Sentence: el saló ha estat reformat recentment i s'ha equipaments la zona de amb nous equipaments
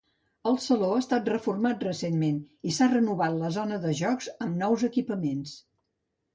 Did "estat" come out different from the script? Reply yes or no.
no